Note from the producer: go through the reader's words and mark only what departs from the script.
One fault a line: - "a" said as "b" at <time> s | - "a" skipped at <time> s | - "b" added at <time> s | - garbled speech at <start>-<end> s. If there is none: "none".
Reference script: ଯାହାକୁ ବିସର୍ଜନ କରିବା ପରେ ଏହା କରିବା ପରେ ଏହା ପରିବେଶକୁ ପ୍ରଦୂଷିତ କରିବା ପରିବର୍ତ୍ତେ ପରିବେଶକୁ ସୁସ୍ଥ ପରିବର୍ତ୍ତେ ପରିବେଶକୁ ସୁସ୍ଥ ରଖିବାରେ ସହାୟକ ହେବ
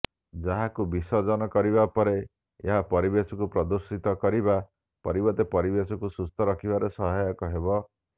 - "କରିବା ପରେ ଏହା" skipped at 2.8 s
- "ପରିବର୍ତ୍ତେ ପରିବେଶକୁ ସୁସ୍ଥ" skipped at 6.5 s